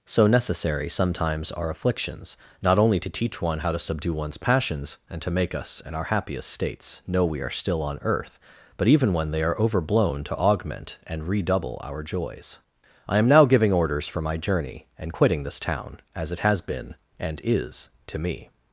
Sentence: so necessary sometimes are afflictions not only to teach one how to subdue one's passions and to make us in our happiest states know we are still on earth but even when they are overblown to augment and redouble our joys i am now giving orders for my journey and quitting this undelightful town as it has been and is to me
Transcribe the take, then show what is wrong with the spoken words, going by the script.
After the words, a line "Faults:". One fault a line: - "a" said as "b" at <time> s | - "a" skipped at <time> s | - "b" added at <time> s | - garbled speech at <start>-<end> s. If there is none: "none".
so necessary sometimes are afflictions not only to teach one how to subdue one's passions and to make us in our happiest states know we are still on earth but even when they are overblown to augment and redouble our joys i am now giving orders for my journey and quitting this town as it has been and is to me
Faults:
- "undelightful" skipped at 15.6 s